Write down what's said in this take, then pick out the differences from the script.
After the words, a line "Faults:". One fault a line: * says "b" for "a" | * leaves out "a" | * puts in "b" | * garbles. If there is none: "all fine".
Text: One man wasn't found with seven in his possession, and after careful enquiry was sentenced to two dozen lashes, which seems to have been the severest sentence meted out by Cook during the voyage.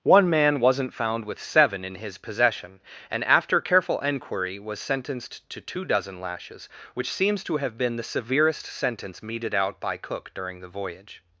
One man wasn't found with seven in his possession, and after careful enquiry was sentenced to two dozen lashes, which seems to have been the severest sentence meted out by Cook during the voyage.
Faults:
all fine